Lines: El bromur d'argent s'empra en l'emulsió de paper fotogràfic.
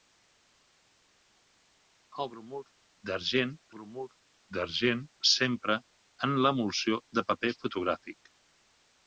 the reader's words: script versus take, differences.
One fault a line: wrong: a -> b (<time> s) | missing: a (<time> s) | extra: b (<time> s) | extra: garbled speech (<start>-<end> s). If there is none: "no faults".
extra: bromur d'argent (3.8 s)